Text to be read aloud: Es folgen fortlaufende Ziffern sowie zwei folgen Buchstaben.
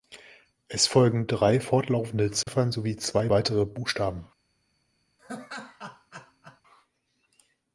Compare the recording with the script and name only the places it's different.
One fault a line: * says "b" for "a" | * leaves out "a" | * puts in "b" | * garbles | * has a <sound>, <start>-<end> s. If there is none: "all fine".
* puts in "drei"
* has a dropout, 2.4-2.5 s
* says "weitere" for "folgen"
* has a laugh, 5.2-6.6 s